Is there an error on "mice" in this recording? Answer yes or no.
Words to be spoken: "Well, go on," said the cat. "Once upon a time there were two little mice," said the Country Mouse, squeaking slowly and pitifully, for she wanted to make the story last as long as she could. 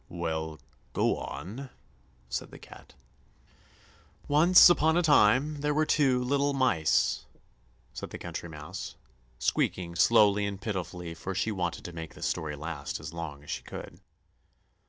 no